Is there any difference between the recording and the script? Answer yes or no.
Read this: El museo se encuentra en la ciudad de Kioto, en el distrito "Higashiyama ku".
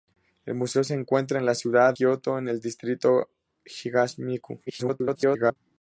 yes